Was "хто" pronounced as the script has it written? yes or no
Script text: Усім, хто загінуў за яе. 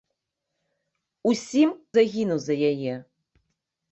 no